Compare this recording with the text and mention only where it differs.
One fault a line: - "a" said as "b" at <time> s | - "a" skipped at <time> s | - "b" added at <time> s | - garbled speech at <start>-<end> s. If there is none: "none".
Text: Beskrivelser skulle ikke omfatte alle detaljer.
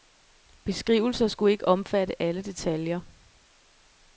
none